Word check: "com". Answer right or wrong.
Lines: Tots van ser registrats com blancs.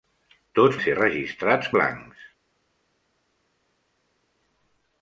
wrong